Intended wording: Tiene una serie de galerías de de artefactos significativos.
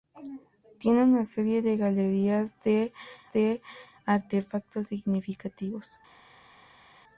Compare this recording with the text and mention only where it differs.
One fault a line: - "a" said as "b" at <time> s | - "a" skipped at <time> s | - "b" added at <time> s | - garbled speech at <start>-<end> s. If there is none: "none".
none